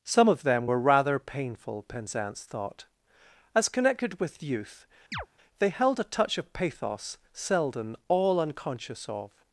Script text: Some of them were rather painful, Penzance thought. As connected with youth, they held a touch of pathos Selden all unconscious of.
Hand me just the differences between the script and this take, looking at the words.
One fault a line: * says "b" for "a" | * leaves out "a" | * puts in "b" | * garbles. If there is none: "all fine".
all fine